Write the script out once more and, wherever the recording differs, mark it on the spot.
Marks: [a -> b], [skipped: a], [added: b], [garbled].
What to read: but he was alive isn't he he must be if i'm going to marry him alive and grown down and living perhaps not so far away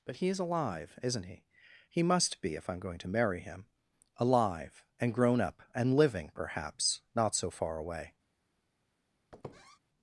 but he [was -> is] alive isn't he he must be if i'm going to marry him alive and grown [down -> up] and living perhaps not so far away